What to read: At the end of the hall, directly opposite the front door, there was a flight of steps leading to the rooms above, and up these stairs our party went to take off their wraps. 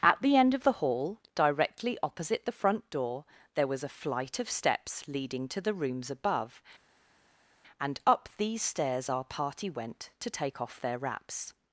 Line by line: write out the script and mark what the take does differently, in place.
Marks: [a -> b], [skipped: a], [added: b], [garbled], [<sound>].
At the end of the hall, directly opposite the front door, there was a flight of steps leading to the rooms above, and up these stairs our party went to take off their wraps.